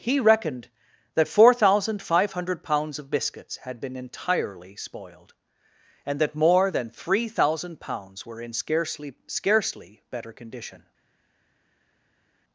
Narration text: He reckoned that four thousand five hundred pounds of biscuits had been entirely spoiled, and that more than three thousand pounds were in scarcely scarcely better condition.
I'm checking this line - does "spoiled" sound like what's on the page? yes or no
yes